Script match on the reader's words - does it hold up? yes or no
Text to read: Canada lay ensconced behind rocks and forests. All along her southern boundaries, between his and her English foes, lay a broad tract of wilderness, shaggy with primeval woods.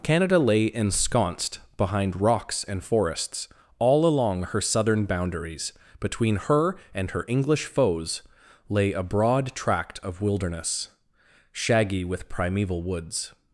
no